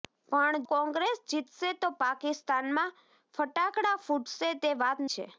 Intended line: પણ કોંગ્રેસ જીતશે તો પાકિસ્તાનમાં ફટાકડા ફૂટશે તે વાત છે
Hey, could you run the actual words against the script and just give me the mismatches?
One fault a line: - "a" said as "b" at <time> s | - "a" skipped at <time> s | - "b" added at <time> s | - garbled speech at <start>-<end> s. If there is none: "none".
none